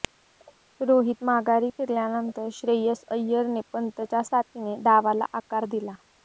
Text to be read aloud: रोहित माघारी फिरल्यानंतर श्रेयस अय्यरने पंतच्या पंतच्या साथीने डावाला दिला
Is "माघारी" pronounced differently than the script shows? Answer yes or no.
no